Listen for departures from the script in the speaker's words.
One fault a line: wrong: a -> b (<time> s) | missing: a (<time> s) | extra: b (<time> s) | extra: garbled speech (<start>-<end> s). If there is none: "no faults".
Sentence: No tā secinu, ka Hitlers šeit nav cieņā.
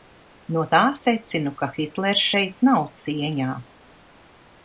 no faults